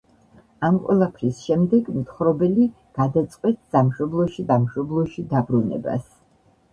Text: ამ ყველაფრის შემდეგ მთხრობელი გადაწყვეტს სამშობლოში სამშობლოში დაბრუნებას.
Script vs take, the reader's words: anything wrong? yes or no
no